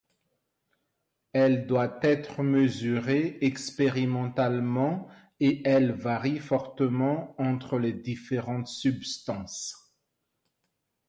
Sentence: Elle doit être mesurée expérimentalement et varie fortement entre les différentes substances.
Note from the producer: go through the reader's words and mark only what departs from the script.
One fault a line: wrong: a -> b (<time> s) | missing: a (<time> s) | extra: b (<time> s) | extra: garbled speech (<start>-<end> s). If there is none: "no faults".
extra: elle (5.7 s)